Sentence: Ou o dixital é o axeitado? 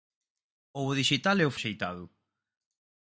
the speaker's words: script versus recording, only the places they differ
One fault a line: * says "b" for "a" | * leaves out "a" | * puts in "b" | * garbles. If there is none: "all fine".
all fine